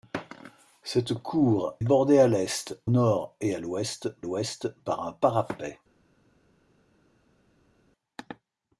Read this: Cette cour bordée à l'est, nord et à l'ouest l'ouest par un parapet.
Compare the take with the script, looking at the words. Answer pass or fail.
pass